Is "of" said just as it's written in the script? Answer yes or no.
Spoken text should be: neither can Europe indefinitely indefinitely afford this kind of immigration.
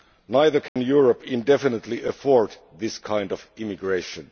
yes